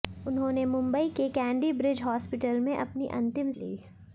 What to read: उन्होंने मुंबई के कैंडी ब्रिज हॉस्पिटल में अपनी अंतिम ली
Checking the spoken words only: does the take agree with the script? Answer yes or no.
yes